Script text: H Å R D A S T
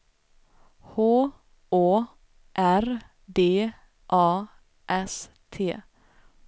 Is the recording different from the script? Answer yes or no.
no